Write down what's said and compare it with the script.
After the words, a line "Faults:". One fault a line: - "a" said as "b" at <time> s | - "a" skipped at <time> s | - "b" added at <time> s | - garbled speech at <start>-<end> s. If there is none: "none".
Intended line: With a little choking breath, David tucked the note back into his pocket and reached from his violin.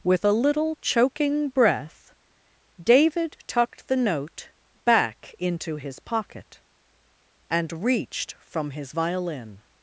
With a little choking breath, David tucked the note back into his pocket and reached from his violin.
Faults:
none